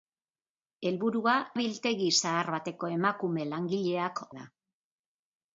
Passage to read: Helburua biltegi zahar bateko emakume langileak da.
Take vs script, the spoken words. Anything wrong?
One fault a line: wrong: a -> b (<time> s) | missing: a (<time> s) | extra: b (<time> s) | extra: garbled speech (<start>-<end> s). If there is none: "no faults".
no faults